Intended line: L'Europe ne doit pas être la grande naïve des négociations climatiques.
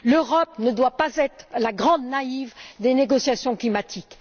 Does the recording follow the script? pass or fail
pass